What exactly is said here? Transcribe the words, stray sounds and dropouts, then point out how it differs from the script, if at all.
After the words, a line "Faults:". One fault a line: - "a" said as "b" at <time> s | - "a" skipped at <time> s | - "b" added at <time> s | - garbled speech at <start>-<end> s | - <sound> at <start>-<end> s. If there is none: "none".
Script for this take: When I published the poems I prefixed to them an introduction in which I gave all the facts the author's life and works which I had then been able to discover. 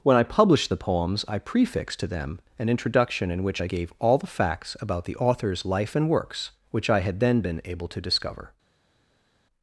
When I published the poems I prefixed to them an introduction in which I gave all the facts about the author's life and works which I had then been able to discover.
Faults:
- "about" added at 4.8 s